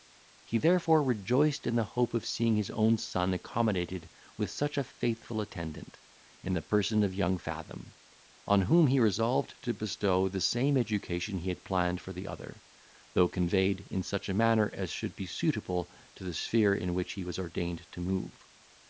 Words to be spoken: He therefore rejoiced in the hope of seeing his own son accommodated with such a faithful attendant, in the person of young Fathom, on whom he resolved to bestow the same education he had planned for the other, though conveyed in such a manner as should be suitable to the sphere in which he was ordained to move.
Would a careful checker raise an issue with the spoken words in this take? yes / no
no